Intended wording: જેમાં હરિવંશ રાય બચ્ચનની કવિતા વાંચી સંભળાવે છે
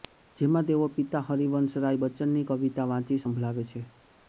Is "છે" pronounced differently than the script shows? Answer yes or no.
no